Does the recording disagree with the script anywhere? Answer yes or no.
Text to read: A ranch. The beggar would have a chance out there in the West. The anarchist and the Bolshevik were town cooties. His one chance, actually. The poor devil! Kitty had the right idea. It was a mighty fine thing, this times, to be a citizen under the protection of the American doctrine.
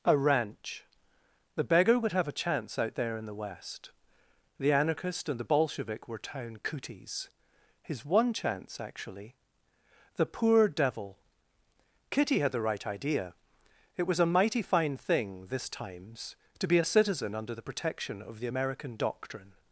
no